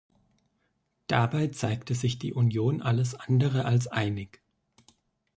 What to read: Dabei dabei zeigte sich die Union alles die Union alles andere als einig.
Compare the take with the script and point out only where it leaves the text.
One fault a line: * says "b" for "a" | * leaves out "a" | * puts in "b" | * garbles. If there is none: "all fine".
* leaves out "dabei"
* leaves out "die Union alles"